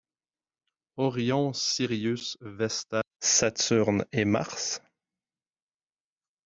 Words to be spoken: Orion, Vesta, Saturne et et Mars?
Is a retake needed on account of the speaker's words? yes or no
yes